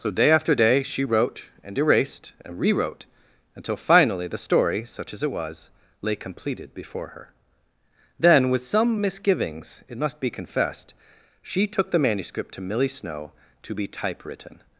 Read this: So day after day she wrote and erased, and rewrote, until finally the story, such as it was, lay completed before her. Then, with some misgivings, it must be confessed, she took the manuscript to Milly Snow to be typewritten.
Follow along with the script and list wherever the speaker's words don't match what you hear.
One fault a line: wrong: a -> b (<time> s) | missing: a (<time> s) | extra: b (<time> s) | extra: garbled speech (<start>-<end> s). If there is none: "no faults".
no faults